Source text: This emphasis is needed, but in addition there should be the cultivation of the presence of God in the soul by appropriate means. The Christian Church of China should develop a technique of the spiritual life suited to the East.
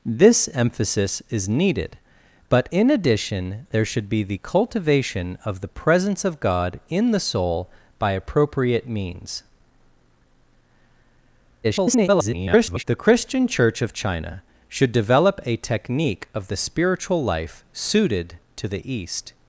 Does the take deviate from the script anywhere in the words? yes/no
yes